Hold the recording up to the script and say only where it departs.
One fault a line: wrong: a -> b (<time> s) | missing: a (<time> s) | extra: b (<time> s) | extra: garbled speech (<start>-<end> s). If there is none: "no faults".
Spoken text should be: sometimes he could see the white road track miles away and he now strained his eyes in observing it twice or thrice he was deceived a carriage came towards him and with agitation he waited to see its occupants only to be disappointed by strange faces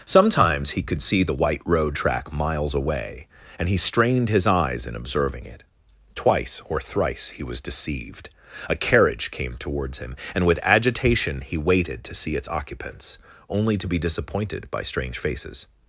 missing: now (3.8 s)